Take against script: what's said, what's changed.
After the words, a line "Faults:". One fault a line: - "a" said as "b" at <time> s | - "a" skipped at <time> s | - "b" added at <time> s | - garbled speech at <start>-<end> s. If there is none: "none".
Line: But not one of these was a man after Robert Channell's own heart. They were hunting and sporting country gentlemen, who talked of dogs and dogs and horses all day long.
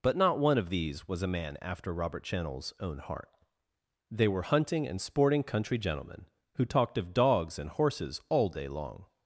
But not one of these was a man after Robert Channell's own heart. They were hunting and sporting country gentlemen, who talked of dogs and horses all day long.
Faults:
- "dogs and" skipped at 7.7 s